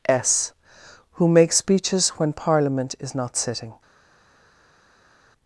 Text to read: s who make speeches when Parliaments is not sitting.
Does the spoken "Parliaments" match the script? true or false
false